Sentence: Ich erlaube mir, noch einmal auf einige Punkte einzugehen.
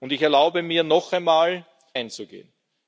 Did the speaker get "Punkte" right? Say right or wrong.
wrong